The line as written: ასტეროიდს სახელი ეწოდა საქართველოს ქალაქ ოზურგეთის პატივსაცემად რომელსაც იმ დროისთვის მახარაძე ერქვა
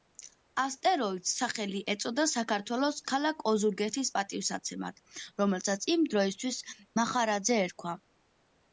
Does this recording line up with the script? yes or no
yes